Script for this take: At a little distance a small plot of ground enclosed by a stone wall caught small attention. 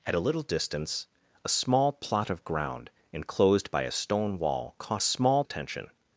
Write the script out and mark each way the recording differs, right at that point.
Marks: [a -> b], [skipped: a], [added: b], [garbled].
At a little distance a small plot of ground enclosed by a stone wall caught small attention.